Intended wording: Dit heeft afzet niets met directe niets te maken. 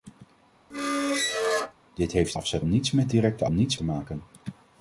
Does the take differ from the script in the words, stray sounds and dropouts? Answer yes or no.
yes